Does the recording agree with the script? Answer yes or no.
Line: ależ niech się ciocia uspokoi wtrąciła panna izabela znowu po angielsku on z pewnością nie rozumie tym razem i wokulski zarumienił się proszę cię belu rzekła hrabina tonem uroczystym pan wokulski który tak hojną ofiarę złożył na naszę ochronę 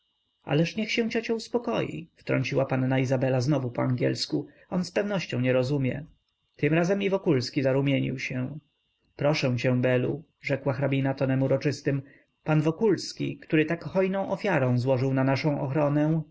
yes